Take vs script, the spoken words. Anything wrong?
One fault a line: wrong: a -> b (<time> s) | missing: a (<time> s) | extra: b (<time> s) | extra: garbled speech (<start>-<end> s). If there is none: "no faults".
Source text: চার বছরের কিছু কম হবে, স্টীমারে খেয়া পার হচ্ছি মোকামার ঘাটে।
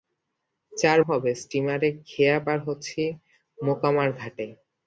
missing: বছরের কিছু কম (1.0 s)